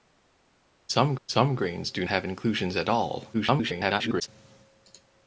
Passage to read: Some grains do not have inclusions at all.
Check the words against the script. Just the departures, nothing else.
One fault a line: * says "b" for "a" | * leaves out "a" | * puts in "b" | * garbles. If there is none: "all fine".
* puts in "some"
* leaves out "not"
* garbles